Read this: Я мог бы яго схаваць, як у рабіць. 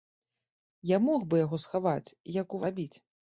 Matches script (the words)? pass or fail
pass